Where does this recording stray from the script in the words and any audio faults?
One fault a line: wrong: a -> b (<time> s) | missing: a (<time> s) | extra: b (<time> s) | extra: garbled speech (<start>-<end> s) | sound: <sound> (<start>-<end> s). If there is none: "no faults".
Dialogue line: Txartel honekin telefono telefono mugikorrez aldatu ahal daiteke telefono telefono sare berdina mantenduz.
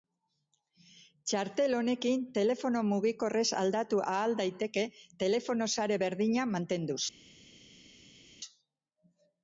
missing: telefono (2.8 s)
missing: telefono (5.7 s)